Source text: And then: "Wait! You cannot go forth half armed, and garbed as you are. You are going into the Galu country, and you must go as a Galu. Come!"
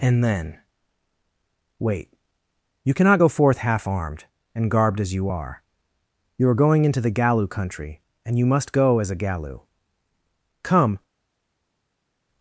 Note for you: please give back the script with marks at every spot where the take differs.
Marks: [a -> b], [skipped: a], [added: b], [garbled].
And then: "Wait! You cannot go forth half armed, and garbed as you are. You are going into the Galu country, and you must go as a Galu. Come!"